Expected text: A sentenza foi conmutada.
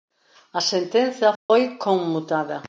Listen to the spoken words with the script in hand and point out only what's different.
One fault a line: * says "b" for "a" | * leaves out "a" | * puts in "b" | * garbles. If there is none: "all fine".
all fine